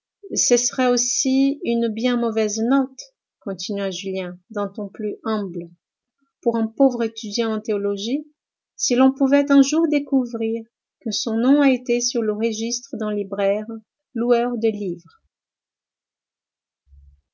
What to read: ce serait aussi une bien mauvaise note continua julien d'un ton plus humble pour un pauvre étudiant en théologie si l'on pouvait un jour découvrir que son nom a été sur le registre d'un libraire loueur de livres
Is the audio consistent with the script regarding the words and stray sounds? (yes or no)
yes